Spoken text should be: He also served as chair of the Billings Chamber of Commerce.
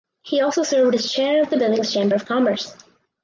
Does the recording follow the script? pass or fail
pass